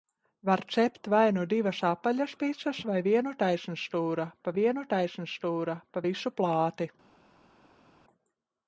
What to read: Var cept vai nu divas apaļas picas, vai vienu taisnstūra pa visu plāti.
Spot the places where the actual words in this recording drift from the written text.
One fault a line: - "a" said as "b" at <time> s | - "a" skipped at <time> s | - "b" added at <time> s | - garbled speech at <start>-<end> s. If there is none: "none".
- "vienu taisnstūra pa" added at 4.6 s